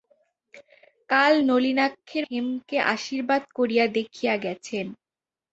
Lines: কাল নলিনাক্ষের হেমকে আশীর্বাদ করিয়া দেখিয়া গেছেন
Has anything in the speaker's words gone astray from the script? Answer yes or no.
no